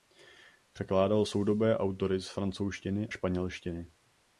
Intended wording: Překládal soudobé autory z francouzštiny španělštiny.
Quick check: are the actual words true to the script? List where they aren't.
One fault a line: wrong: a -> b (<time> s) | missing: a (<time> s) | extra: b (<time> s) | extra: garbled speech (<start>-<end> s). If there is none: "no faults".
no faults